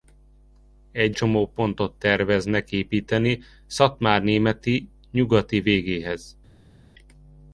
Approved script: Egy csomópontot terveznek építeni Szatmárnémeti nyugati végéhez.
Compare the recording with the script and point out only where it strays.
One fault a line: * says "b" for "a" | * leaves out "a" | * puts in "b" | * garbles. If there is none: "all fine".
all fine